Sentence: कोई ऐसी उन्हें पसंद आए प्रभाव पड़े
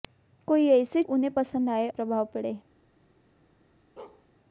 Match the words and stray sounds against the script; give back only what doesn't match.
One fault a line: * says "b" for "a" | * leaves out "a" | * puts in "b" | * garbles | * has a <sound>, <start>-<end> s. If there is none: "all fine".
* has a bark, 4.0-4.3 s